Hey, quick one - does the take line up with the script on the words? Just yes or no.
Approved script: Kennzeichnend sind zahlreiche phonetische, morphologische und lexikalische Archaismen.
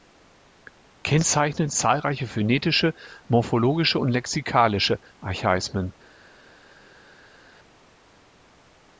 no